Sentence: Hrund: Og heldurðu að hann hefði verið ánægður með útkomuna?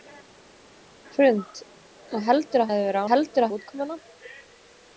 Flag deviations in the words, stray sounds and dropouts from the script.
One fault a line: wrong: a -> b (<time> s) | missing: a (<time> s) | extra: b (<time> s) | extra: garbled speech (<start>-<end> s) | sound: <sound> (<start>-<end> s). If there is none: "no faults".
missing: hann (2.7 s)
wrong: ánægður -> heldurðu (3.1 s)